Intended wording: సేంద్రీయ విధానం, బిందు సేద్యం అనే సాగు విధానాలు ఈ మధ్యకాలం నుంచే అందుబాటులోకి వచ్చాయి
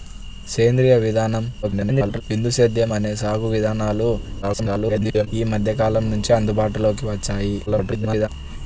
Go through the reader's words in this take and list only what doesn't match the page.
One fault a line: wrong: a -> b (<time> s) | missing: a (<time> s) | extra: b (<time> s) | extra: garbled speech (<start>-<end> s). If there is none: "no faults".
extra: garbled speech (1.6-2.2 s)
extra: garbled speech (4.4-5.3 s)
extra: garbled speech (7.7-8.3 s)